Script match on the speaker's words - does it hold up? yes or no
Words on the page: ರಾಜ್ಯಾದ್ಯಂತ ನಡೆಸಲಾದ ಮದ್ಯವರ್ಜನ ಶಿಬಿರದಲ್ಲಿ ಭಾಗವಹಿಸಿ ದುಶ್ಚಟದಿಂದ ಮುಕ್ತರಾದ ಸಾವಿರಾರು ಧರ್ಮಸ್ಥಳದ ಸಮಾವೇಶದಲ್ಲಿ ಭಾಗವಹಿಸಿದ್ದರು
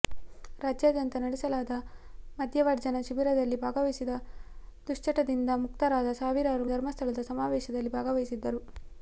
yes